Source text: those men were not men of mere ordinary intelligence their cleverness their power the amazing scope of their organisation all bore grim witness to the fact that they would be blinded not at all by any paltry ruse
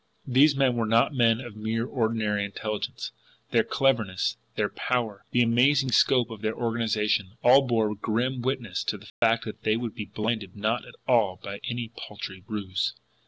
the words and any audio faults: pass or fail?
fail